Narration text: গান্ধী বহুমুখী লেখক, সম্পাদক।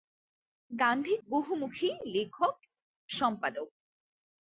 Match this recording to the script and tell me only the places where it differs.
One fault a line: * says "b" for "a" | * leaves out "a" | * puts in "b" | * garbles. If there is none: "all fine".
all fine